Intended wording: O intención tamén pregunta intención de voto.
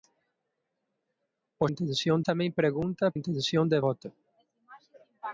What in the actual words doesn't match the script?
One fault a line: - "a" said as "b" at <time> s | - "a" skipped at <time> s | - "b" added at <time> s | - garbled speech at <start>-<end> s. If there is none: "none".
none